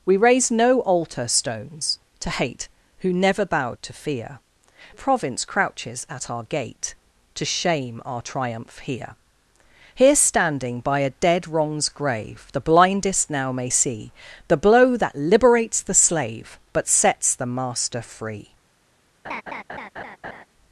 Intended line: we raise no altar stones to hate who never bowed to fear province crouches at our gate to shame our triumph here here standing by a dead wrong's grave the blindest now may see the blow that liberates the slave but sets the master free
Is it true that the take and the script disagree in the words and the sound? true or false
true